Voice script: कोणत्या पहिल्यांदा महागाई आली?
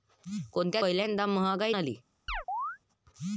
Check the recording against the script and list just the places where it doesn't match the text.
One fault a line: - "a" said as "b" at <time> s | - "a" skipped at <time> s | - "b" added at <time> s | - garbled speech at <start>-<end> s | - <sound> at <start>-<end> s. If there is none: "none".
- chirp at 2.3-2.8 s